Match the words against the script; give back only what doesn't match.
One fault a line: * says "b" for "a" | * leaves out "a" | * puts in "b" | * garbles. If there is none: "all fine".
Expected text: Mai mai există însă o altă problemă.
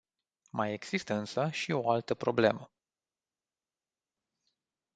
* leaves out "mai"
* puts in "și"